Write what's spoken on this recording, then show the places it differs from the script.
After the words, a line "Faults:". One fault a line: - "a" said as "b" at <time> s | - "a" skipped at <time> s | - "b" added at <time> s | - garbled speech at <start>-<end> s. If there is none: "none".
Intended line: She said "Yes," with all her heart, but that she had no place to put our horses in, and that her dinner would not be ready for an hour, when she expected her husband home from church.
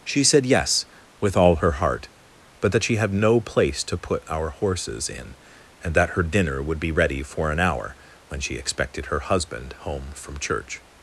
She said "Yes," with all her heart, but that she had no place to put our horses in, and that her dinner would be ready for an hour, when she expected her husband home from church.
Faults:
- "not" skipped at 6.8 s